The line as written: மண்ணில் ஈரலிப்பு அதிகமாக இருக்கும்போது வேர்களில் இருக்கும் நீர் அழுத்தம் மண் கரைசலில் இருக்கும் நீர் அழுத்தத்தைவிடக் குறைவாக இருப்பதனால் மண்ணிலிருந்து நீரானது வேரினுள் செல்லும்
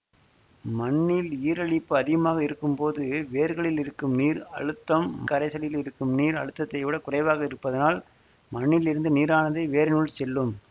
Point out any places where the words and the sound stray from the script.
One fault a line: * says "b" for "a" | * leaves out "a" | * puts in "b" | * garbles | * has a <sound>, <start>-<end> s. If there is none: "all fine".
* leaves out "மண்"